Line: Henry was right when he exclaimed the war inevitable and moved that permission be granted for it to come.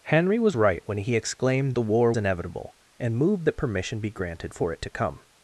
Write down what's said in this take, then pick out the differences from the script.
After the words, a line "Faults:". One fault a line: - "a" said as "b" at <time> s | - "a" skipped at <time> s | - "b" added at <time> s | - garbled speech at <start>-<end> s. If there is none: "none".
Henry was right when he exclaimed the war inevitable and moved that permission be granted for it to come.
Faults:
none